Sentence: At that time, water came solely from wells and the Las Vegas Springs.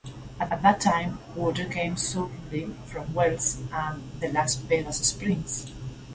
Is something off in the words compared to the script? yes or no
yes